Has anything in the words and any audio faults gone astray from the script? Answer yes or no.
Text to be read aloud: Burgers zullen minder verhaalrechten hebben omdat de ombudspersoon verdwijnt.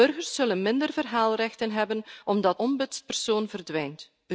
yes